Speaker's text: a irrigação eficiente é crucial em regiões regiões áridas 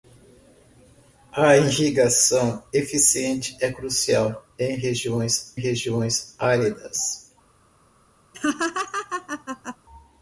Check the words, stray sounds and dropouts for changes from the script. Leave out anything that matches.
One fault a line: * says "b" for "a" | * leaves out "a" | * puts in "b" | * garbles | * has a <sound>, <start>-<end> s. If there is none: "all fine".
* has a laugh, 8.3-9.8 s